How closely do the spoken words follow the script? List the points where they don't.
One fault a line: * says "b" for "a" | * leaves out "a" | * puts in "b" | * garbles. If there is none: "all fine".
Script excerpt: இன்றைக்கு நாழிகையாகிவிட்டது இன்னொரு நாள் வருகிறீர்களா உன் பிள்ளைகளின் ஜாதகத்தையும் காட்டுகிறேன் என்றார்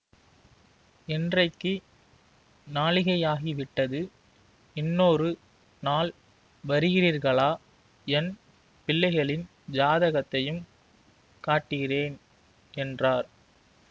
* says "என்" for "உன்"